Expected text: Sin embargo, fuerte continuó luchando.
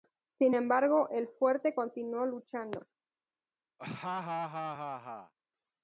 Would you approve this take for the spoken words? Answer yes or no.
no